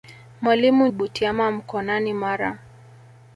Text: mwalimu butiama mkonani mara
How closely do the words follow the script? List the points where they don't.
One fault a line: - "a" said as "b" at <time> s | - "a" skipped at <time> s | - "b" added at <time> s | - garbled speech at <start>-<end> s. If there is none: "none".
none